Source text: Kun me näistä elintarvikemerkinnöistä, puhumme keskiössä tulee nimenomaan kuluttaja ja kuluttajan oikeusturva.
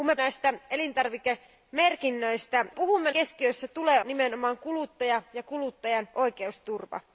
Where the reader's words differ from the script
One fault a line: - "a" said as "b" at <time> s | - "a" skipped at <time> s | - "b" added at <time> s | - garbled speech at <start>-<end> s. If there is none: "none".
none